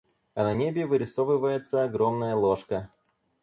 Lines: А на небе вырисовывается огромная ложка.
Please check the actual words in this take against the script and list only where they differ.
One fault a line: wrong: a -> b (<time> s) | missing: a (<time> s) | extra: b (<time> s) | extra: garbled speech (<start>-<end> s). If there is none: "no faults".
no faults